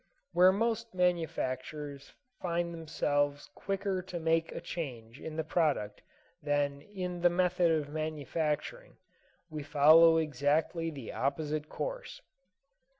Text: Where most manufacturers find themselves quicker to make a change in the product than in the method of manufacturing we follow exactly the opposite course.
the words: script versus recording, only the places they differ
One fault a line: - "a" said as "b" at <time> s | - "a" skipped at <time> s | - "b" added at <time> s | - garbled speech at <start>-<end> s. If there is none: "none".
none